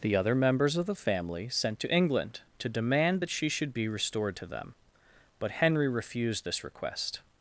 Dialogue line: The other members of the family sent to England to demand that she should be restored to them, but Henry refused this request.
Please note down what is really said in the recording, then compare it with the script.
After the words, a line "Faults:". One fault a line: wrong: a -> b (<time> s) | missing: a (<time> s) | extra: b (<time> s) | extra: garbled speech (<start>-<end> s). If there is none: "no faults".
The other members of the family sent to England to demand that she should be restored to them, but Henry refused this request.
Faults:
no faults